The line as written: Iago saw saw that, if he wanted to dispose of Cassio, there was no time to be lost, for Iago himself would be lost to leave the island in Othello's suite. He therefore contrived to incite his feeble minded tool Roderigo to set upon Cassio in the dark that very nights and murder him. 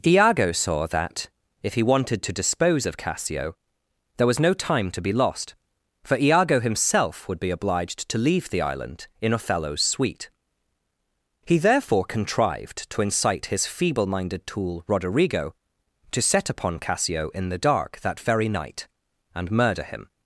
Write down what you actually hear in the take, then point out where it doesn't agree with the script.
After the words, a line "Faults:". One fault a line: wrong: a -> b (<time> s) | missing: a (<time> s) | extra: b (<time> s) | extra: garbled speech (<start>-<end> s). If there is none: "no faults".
Iago saw that, if he wanted to dispose of Cassio, there was no time to be lost, for Iago himself would be obliged to leave the island in Othello's suite. He therefore contrived to incite his feeble minded tool Roderigo to set upon Cassio in the dark that very night and murder him.
Faults:
missing: saw (0.9 s)
wrong: lost -> obliged (7.5 s)
wrong: nights -> night (18.5 s)